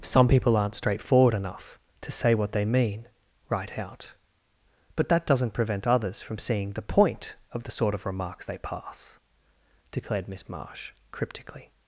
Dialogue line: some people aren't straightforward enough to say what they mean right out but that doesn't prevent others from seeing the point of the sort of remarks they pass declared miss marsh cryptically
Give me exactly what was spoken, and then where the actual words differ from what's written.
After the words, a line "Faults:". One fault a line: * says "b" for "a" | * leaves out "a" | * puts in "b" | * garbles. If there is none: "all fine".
some people aren't straightforward enough to say what they mean right out but that doesn't prevent others from seeing the point of the sort of remarks they pass declared miss marsh cryptically
Faults:
all fine